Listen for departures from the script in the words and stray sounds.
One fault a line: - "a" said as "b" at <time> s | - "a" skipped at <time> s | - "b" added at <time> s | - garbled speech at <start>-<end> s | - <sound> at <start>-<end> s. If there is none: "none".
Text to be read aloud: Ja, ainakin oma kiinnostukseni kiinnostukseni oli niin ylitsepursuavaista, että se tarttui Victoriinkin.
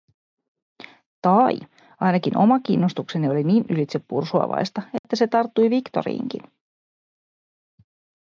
- "Ja" said as "Tai" at 1.2 s
- "kiinnostukseni" skipped at 3.3 s
- dropout at 5.0-5.0 s